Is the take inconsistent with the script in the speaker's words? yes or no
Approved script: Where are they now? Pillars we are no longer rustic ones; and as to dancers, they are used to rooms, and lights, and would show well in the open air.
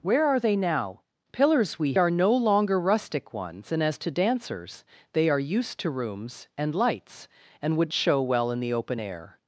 no